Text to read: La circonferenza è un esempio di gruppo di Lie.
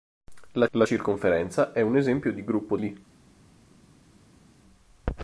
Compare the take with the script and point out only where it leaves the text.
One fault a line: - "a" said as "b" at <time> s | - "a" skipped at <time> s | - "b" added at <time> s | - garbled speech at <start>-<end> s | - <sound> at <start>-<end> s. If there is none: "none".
- "la" added at 0.7 s
- "di" skipped at 2.8 s